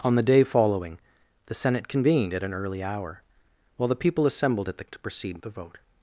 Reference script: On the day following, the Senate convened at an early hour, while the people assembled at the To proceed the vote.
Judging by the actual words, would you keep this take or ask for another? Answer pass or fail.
pass